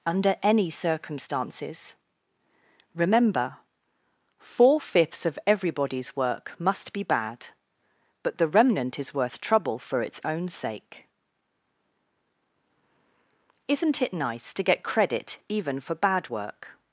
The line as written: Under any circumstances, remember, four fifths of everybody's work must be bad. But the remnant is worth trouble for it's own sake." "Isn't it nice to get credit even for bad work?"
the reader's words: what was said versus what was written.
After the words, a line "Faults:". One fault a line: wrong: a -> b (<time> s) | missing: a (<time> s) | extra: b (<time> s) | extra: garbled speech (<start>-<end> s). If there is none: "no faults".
Under any circumstances, remember, four fifths of everybody's work must be bad. But the remnant is worth trouble for it's own sake." "Isn't it nice to get credit even for bad work?"
Faults:
no faults